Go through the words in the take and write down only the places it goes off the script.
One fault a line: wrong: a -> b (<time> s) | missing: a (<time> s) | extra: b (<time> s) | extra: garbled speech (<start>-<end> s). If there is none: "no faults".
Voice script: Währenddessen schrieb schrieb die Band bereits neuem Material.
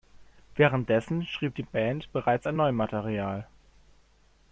missing: schrieb (1.5 s)
extra: an (2.4 s)